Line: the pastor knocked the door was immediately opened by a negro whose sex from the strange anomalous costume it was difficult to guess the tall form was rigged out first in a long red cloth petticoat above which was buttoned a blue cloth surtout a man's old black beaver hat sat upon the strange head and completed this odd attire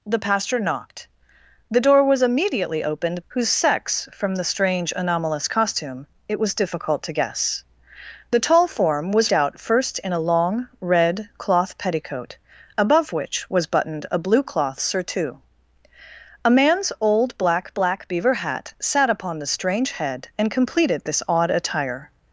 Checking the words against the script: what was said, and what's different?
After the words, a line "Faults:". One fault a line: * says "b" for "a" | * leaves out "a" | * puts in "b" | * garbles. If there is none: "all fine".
the pastor knocked the door was immediately opened whose sex from the strange anomalous costume it was difficult to guess the tall form was out first in a long red cloth petticoat above which was buttoned a blue cloth surtout a man's old black black beaver hat sat upon the strange head and completed this odd attire
Faults:
* leaves out "by a negro"
* leaves out "rigged"
* puts in "black"